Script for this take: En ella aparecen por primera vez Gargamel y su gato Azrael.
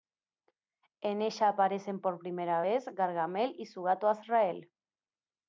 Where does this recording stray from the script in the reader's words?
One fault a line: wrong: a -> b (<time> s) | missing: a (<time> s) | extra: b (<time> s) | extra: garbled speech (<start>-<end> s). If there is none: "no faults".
no faults